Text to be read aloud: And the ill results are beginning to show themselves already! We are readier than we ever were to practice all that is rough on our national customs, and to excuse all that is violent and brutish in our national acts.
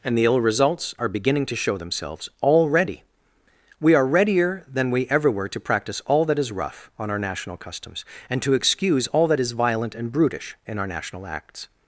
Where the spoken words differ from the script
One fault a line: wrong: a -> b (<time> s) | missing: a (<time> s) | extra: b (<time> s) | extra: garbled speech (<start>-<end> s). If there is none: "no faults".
no faults